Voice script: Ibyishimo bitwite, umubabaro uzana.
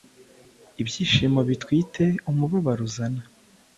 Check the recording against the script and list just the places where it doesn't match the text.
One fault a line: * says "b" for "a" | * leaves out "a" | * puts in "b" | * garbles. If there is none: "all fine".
all fine